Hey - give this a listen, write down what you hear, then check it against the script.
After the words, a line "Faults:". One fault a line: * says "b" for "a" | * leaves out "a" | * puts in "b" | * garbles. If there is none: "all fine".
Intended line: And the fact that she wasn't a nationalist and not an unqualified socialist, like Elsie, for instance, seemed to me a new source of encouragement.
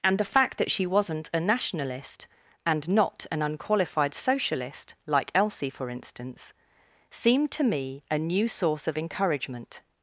And the fact that she wasn't a nationalist and not an unqualified socialist, like Elsie, for instance, seemed to me a new source of encouragement.
Faults:
all fine